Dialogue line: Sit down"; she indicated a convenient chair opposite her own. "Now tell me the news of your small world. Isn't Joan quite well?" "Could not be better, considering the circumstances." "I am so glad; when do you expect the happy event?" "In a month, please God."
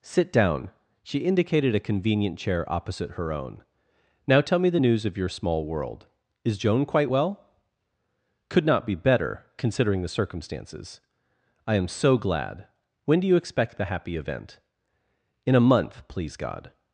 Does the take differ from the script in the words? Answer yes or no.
yes